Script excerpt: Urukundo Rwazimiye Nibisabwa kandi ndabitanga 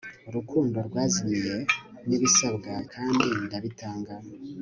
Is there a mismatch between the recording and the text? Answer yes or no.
no